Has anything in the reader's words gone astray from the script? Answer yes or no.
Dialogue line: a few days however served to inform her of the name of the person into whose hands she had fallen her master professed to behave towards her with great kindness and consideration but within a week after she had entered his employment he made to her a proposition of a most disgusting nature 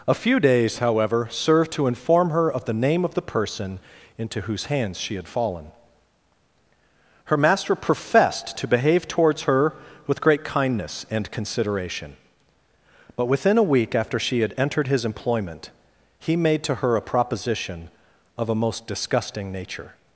no